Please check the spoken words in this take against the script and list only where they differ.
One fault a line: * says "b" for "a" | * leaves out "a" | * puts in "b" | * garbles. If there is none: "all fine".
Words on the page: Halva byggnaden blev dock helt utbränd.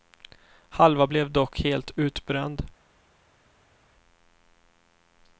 * leaves out "byggnaden"